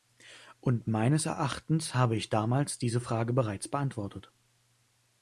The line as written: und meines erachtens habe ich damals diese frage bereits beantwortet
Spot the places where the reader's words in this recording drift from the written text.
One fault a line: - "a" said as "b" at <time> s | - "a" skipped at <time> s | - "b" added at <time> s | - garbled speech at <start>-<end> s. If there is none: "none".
none